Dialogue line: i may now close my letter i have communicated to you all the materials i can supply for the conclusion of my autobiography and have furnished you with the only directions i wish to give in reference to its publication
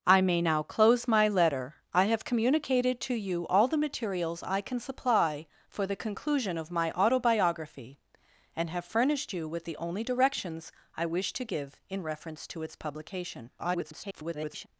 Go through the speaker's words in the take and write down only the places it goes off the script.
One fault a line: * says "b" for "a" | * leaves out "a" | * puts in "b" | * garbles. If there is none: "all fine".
* garbles